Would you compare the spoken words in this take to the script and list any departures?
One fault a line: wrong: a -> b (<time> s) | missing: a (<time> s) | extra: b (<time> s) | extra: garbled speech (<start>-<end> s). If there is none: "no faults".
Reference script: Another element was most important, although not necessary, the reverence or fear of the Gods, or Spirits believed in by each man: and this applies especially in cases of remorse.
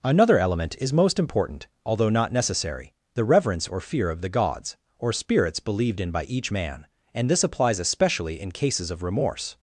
wrong: was -> is (0.8 s)